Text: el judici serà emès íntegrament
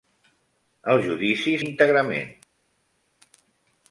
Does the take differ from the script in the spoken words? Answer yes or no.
yes